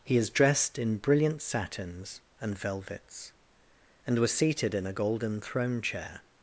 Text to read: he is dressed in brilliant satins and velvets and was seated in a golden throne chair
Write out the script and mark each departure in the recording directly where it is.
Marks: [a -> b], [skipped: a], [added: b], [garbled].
he is dressed in brilliant satins and velvets and was seated in a golden throne chair